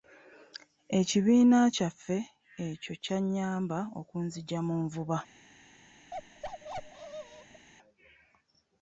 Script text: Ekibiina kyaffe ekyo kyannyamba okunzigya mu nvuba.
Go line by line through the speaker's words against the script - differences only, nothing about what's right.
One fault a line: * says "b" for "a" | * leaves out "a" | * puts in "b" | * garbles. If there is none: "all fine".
all fine